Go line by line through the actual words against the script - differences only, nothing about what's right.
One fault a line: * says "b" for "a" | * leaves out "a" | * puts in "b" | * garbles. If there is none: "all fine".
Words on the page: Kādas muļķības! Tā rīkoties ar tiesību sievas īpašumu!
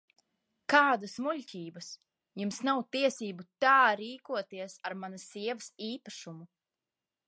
* puts in "Jums nav tiesību"
* says "manas" for "tiesību"